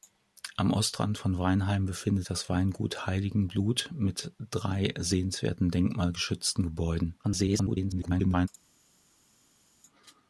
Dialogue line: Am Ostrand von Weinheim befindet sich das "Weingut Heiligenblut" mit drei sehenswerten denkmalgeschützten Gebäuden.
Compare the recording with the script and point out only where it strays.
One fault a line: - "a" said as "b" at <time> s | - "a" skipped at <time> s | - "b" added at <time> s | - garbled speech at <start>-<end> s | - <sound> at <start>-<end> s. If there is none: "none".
- "sich" skipped at 2.3 s
- garbled speech at 7.2-8.5 s